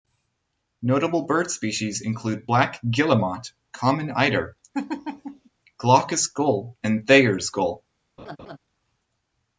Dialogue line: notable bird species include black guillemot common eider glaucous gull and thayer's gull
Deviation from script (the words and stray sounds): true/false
true